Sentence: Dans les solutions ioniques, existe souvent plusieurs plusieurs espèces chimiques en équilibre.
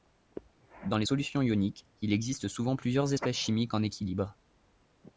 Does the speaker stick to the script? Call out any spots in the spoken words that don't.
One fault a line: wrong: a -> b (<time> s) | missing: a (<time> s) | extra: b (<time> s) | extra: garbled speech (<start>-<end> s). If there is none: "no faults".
extra: il (2.0 s)
missing: plusieurs (3.1 s)